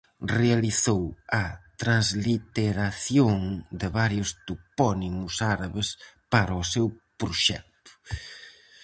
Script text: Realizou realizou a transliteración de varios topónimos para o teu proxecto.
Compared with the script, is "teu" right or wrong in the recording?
wrong